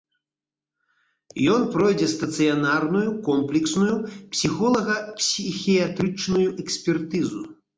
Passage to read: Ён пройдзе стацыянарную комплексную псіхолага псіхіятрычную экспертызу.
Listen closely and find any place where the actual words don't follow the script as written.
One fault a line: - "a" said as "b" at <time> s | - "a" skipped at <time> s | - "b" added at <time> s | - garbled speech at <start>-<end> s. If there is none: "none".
none